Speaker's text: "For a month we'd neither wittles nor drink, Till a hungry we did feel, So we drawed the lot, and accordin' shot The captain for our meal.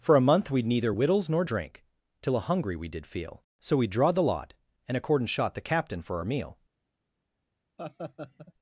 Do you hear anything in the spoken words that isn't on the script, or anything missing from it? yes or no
no